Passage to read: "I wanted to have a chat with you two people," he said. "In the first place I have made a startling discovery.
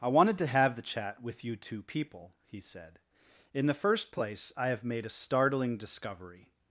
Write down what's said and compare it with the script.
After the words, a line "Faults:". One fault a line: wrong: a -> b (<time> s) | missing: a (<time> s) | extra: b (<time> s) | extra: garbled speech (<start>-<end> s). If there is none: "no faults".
"I wanted to have the chat with you two people," he said. "In the first place I have made a startling discovery.
Faults:
wrong: a -> the (0.8 s)